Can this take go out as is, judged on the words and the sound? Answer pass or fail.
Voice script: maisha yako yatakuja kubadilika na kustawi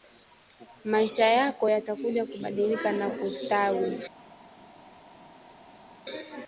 pass